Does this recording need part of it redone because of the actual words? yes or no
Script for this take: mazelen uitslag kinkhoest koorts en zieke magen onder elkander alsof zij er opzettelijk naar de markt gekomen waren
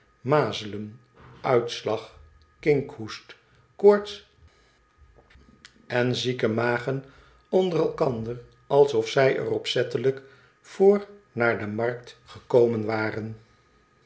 yes